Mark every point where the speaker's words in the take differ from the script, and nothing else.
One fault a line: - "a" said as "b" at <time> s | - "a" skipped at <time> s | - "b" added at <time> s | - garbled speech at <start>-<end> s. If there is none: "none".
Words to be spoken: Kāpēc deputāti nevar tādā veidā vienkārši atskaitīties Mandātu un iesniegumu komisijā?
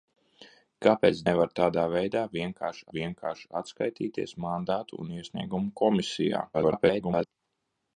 - "deputāti" skipped at 1.2 s
- "vienkārši" added at 2.9 s
- garbled speech at 6.5-7.3 s